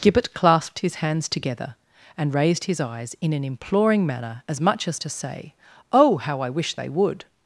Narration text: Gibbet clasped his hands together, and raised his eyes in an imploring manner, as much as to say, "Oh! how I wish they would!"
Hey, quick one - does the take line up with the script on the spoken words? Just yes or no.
yes